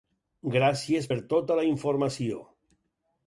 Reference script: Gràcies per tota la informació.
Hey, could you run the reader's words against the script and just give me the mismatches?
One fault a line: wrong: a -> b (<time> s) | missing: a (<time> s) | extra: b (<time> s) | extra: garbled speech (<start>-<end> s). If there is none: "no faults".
no faults